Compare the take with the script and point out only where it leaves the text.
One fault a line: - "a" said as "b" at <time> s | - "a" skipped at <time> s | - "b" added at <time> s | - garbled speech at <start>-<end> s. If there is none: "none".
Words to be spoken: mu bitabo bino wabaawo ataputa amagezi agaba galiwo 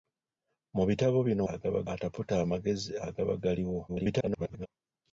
- "wabaawo" said as "agaba" at 1.5 s
- garbled speech at 3.9-4.7 s